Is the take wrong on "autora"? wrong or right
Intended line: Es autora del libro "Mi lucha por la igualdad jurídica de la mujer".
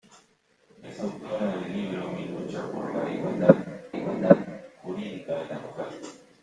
right